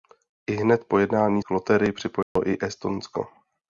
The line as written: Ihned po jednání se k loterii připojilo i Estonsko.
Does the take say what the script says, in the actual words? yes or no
no